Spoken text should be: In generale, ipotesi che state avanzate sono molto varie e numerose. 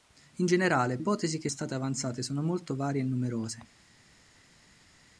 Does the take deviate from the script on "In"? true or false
false